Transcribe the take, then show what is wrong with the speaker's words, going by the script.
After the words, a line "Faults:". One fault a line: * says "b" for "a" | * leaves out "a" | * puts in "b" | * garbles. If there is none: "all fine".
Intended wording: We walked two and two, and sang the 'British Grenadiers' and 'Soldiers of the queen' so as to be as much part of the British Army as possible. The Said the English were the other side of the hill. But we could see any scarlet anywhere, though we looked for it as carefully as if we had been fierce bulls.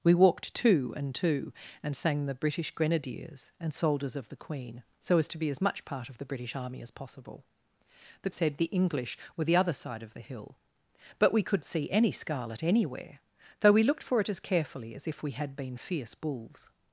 We walked two and two, and sang the 'British Grenadiers' and 'Soldiers of the queen' so as to be as much part of the British Army as possible. The Said the English were the other side of the hill. But we could see any scarlet anywhere, though we looked for it as carefully as if we had been fierce bulls.
Faults:
all fine